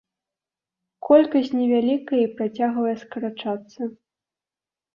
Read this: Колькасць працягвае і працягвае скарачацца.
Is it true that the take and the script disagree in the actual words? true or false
true